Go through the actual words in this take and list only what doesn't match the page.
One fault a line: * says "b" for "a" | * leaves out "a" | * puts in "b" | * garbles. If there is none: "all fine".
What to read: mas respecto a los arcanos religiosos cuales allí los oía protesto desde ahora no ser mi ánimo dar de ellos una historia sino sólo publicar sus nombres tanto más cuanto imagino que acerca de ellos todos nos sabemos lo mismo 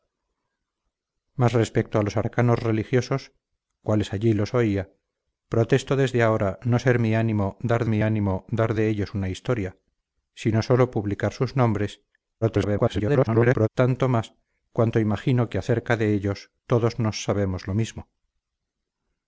* puts in "mi ánimo dar"
* garbles